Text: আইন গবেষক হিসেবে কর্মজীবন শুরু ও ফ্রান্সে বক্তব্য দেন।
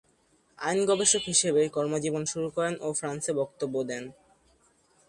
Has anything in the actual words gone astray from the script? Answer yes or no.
yes